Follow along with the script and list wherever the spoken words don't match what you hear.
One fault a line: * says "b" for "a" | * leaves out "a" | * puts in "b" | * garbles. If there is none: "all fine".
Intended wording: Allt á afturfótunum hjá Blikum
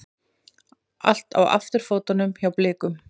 all fine